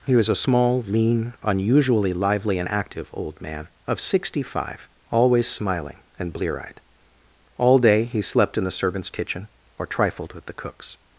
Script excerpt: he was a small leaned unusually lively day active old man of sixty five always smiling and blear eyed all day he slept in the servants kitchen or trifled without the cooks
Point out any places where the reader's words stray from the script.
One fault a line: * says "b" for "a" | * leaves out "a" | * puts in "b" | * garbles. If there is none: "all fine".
* says "lean" for "leaned"
* says "and" for "day"
* says "with" for "without"